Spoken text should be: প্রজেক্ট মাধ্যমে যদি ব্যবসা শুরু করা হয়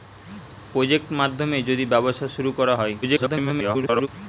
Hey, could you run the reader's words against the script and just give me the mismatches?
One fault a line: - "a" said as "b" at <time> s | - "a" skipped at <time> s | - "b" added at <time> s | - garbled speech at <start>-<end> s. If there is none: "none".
- garbled speech at 3.0-4.1 s